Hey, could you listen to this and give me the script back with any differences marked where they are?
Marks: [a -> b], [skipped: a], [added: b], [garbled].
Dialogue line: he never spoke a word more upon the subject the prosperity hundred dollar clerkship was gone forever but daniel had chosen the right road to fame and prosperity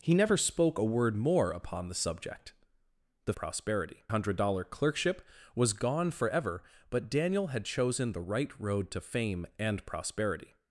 he never spoke a word more upon the subject the prosperity hundred dollar clerkship was gone forever but daniel had chosen the right road to fame and prosperity